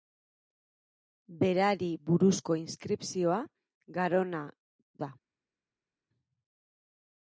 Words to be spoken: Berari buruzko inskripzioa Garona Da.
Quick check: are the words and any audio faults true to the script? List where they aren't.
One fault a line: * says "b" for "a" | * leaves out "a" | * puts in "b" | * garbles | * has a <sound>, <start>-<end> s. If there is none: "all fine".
all fine